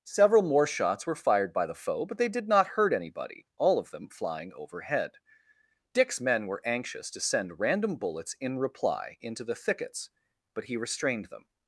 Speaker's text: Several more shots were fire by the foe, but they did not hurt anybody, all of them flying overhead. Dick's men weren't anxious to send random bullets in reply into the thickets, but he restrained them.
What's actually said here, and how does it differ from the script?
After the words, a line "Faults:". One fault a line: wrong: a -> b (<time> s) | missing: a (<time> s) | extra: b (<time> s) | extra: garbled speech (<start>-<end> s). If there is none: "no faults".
Several more shots were fired by the foe, but they did not hurt anybody, all of them flying overhead. Dick's men were anxious to send random bullets in reply into the thickets, but he restrained them.
Faults:
wrong: fire -> fired (1.1 s)
wrong: weren't -> were (6.5 s)